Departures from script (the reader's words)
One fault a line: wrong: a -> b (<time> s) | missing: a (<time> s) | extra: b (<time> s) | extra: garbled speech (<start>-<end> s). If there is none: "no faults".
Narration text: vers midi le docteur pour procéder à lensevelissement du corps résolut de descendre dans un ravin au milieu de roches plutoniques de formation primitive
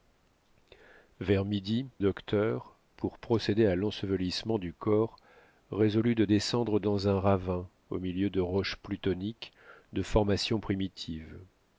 missing: le (1.9 s)